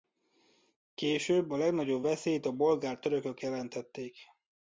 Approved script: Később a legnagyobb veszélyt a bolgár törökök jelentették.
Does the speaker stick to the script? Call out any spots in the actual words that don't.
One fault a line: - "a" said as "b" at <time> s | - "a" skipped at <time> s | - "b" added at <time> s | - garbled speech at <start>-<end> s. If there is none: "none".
none